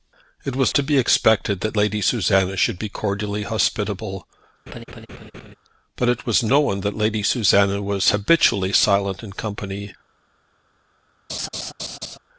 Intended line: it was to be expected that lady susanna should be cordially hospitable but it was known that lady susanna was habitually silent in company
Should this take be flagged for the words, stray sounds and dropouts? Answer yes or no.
yes